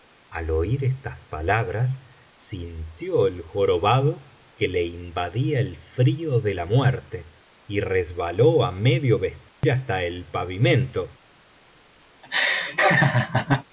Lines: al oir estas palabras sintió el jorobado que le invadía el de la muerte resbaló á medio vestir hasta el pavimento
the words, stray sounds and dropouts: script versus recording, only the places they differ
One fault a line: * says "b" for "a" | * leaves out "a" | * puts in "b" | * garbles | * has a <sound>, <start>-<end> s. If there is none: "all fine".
* puts in "frío"
* puts in "y"
* has a dropout, 9.5-9.6 s
* has a laugh, 12.2-13.6 s